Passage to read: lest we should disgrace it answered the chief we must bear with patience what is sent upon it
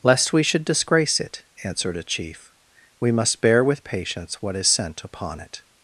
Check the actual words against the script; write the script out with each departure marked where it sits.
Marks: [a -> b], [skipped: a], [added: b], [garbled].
lest we should disgrace it answered [the -> a] chief we must bear with patience what is sent upon it